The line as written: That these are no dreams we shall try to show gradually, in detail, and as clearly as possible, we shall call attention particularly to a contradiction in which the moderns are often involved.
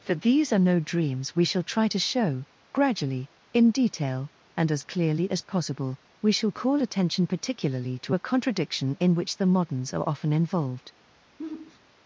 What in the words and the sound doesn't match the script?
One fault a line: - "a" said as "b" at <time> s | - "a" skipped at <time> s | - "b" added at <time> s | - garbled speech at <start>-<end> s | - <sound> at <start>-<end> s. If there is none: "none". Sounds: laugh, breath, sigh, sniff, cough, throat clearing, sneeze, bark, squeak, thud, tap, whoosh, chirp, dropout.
- sigh at 11.4-11.8 s